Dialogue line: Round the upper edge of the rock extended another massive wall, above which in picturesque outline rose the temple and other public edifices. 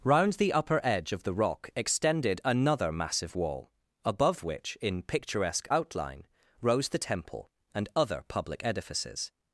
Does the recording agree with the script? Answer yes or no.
yes